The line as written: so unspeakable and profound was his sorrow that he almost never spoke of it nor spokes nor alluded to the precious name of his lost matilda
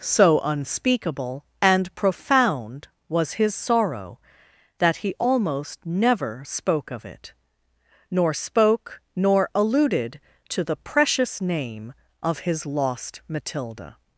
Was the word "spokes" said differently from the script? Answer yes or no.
yes